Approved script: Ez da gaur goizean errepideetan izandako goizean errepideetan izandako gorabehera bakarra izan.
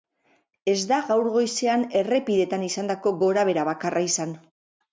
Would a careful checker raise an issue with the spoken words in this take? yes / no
yes